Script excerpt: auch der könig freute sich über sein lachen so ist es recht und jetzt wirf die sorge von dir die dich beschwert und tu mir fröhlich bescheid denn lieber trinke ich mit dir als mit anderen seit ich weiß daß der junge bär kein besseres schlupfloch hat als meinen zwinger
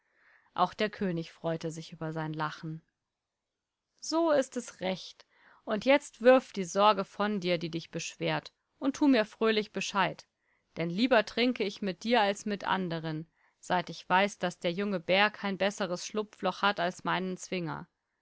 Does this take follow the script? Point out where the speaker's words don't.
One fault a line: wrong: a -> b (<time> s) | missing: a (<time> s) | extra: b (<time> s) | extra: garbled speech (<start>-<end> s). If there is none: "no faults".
no faults